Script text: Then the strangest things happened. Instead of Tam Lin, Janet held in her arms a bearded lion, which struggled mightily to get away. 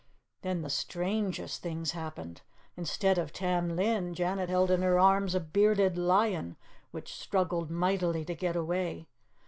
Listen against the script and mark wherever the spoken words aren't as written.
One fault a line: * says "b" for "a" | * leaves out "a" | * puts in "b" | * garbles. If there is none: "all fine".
all fine